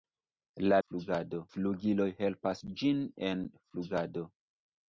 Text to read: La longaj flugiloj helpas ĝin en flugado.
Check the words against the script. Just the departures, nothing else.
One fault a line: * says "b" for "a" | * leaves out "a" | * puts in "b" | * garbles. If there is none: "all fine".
* says "flugado" for "longaj"